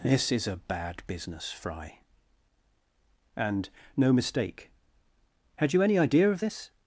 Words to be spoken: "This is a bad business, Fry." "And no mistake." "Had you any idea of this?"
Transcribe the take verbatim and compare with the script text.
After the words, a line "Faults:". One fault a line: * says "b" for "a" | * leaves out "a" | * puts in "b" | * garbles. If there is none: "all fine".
"This is a bad business, Fry." "And no mistake." "Had you any idea of this?"
Faults:
all fine